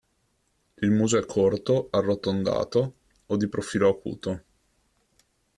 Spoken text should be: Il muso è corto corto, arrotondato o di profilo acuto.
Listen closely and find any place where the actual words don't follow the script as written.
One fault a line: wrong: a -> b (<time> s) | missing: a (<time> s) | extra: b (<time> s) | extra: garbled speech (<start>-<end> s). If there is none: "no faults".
missing: corto (1.9 s)